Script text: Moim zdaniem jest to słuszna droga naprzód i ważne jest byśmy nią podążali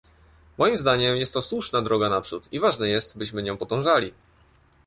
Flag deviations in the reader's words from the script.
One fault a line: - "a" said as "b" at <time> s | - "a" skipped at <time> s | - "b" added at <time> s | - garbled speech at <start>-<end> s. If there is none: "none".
none